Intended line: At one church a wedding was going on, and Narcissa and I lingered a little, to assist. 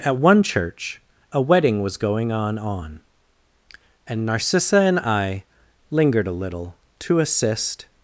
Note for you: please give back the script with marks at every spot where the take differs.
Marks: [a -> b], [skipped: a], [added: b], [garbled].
At one church a wedding was going on, [added: on] and Narcissa and I lingered a little, to assist.